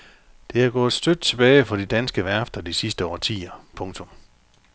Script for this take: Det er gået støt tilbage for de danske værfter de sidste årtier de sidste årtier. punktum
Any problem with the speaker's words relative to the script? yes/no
yes